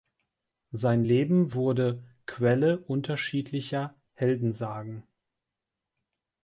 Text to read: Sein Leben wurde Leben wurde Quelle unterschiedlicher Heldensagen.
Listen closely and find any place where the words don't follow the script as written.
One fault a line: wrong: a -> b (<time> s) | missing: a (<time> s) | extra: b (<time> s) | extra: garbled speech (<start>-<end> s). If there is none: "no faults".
missing: Leben wurde (2.0 s)